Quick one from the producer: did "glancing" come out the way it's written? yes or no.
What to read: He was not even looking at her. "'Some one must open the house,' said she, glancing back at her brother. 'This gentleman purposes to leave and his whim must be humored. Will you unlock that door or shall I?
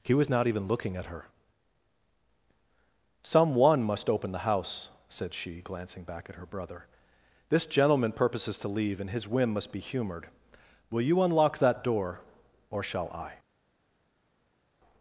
yes